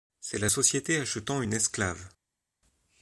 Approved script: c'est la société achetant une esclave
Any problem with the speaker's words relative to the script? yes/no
no